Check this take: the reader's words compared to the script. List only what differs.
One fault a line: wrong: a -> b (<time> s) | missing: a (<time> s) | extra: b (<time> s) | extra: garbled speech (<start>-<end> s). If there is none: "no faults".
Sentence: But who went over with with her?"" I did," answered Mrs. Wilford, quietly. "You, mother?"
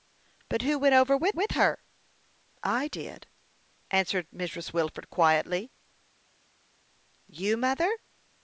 no faults